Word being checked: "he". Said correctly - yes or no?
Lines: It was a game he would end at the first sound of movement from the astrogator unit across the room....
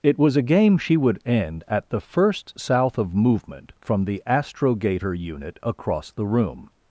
no